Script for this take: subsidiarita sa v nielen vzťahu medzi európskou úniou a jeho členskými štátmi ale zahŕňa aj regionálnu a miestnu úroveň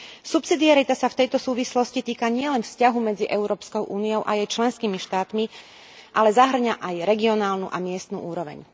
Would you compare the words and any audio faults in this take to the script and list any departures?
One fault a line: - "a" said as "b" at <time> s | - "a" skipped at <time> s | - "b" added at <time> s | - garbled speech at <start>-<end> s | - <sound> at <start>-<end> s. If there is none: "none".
- "tejto súvislosti týka" added at 1.2 s
- "jeho" said as "jej" at 4.4 s